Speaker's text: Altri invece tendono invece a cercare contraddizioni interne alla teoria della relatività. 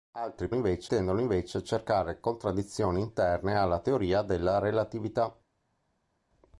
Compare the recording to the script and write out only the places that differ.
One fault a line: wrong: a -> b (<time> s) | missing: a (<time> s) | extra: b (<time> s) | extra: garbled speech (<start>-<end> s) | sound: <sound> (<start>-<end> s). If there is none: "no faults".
no faults